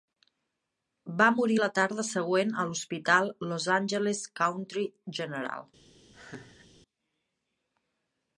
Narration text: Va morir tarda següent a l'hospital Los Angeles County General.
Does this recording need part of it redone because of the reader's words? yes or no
yes